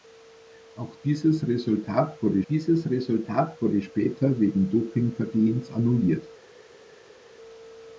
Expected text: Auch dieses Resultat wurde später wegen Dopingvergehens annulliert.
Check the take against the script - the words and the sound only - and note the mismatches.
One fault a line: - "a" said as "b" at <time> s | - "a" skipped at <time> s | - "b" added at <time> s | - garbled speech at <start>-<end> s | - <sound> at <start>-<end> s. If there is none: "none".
- "dieses Resultat wurde" added at 2.4 s